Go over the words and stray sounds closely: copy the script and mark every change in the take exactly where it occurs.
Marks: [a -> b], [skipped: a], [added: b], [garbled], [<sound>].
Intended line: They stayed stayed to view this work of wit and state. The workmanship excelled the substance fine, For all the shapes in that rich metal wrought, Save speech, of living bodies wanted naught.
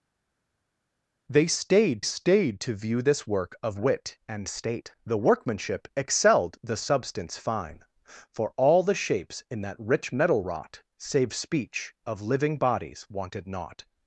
They stayed stayed to view this work of wit and state. The workmanship excelled the substance fine, For all the shapes in that rich metal wrought, Save speech, of living bodies wanted naught.